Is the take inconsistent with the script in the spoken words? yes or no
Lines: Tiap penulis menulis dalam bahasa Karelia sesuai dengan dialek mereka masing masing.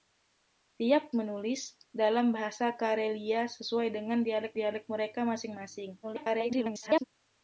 yes